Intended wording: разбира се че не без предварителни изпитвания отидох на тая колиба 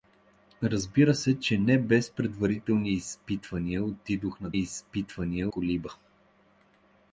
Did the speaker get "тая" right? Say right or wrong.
wrong